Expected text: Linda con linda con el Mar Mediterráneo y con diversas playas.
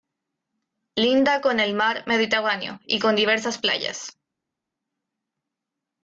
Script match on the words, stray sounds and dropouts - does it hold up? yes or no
no